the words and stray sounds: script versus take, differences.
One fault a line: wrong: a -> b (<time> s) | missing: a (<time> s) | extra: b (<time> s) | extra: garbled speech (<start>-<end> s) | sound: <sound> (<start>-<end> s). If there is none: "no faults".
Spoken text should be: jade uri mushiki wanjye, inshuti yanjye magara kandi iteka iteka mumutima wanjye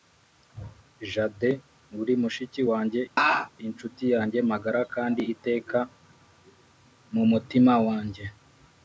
sound: laugh (3.2-3.5 s)
missing: iteka (5.8 s)